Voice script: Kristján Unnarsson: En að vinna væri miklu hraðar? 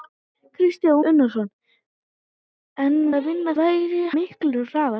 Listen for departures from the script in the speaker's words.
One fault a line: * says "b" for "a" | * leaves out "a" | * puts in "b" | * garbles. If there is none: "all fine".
all fine